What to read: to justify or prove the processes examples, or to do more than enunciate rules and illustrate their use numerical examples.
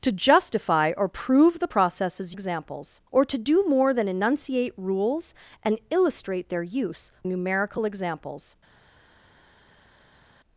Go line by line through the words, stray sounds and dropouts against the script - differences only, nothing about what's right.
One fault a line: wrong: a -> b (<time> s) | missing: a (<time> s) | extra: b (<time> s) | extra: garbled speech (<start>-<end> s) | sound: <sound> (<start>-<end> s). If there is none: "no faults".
no faults